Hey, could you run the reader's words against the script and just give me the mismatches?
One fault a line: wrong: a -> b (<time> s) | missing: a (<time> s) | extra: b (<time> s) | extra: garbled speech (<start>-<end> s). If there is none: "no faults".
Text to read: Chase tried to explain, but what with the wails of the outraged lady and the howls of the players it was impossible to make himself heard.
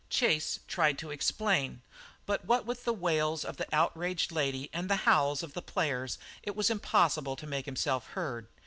no faults